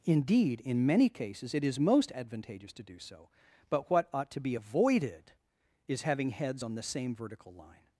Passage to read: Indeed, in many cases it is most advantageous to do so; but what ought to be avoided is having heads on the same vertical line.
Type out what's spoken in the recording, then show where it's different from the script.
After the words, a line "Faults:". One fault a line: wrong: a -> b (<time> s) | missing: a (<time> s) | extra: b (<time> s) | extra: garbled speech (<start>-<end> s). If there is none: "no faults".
Indeed, in many cases it is most advantageous to do so; but what ought to be avoided is having heads on the same vertical line.
Faults:
no faults